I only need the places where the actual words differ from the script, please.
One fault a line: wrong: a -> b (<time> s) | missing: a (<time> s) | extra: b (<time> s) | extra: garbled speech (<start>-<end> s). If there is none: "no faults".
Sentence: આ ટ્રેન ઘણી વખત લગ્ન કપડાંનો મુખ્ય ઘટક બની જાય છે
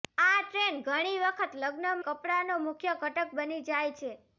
no faults